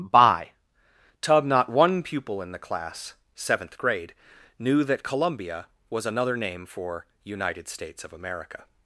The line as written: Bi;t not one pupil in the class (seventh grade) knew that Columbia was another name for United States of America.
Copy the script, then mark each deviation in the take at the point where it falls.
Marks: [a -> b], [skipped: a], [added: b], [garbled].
[Bi;t -> By tub] not one pupil in the class (seventh grade) knew that Columbia was another name for United States of America.